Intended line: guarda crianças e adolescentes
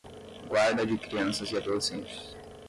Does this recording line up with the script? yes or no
no